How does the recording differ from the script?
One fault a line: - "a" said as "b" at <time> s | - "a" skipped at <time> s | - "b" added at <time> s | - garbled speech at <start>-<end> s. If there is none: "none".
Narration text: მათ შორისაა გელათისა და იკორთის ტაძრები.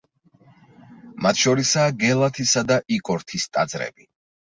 none